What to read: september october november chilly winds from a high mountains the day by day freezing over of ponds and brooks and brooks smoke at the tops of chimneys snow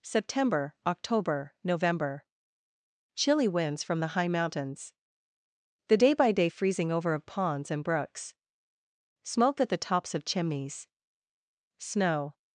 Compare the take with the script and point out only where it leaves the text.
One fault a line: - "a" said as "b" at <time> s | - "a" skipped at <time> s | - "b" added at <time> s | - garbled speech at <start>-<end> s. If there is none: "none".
- "a" said as "the" at 4.0 s
- "and brooks" skipped at 8.3 s